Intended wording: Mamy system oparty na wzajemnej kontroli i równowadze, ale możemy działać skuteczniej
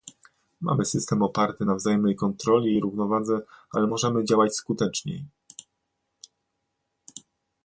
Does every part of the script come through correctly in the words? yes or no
yes